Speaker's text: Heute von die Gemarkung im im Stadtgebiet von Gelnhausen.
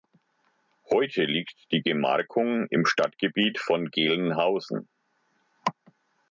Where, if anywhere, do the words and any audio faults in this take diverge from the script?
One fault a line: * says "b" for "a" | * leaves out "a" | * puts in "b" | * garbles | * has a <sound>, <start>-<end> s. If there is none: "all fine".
* says "liegt" for "von"
* leaves out "im"